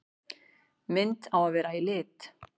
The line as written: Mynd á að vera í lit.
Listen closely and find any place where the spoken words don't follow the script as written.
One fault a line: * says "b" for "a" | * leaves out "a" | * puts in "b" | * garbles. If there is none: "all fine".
all fine